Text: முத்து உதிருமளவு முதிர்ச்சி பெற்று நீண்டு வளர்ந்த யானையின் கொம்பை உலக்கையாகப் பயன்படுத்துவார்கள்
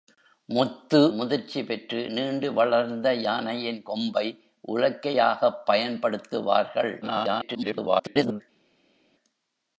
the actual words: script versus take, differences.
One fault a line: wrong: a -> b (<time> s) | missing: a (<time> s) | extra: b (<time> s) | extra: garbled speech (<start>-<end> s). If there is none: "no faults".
missing: உதிருமளவு (1.0 s)
extra: garbled speech (7.0-8.4 s)